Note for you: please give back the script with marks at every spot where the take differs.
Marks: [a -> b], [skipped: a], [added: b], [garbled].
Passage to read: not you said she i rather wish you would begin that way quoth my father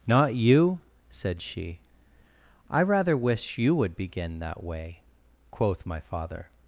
not you said she i rather wish you would begin that way quoth my father